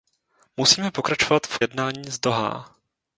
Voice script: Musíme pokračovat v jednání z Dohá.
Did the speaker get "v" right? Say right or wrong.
right